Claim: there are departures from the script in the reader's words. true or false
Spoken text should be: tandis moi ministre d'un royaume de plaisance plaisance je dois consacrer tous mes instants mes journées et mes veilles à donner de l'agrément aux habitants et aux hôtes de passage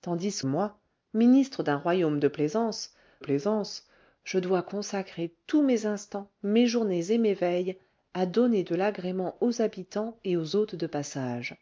false